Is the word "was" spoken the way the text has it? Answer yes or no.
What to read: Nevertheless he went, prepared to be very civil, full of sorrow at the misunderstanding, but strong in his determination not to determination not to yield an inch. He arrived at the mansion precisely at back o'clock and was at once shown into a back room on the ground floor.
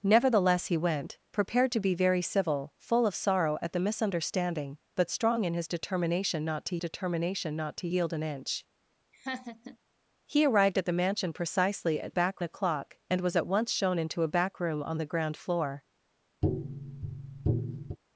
yes